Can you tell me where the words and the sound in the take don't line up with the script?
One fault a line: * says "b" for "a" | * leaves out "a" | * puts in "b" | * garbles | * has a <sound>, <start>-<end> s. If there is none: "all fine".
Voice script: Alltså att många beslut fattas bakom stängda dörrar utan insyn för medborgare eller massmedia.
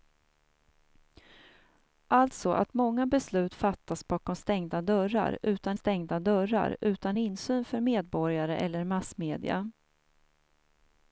* puts in "stängda dörrar utan"